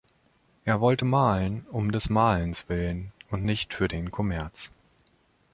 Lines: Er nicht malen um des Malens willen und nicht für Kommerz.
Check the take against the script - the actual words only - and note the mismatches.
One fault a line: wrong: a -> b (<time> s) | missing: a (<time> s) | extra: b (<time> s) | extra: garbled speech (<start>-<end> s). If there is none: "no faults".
wrong: nicht -> wollte (0.8 s)
extra: den (3.9 s)